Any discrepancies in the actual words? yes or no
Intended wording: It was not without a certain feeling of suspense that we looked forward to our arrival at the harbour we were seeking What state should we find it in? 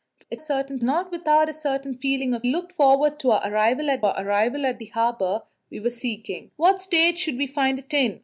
yes